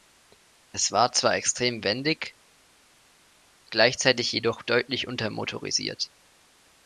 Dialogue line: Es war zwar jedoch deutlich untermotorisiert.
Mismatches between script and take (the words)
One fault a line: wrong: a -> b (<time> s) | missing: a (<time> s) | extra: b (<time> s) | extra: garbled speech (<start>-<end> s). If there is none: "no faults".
extra: extrem wendig gleichzeitig (1.4 s)